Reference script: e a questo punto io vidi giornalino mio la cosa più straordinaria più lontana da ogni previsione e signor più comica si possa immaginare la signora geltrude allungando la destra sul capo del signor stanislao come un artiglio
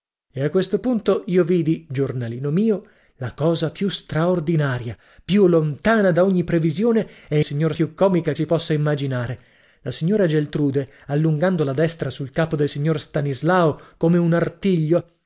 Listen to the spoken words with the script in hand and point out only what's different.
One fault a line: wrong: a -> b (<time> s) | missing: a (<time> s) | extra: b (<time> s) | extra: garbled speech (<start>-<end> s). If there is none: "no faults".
no faults